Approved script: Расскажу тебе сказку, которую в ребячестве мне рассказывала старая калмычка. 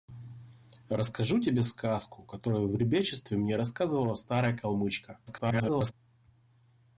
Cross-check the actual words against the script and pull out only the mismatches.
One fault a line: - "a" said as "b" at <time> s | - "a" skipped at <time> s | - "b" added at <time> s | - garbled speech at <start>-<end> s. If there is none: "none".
- garbled speech at 5.3-5.9 s